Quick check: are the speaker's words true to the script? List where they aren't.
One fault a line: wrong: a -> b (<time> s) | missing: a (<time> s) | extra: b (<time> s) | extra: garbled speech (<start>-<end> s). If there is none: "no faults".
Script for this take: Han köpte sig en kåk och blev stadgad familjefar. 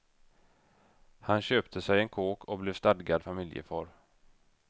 no faults